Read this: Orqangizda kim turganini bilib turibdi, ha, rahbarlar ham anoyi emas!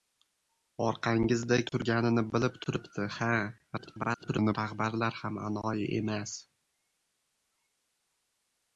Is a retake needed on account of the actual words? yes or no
yes